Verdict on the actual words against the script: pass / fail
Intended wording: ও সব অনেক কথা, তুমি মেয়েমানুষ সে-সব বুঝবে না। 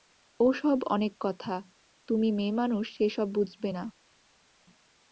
pass